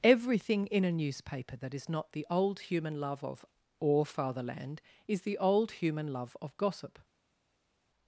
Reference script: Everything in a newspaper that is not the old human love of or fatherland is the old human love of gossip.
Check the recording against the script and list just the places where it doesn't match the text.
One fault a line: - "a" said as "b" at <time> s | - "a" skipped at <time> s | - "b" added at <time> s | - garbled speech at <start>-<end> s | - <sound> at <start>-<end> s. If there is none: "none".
none